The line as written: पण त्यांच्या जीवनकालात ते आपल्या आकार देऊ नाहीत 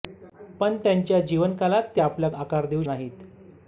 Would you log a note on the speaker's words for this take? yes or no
no